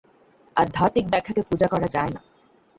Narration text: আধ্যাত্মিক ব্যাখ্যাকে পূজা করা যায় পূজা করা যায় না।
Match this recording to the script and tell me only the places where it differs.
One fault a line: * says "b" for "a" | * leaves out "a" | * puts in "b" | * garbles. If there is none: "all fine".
* leaves out "পূজা করা যায়"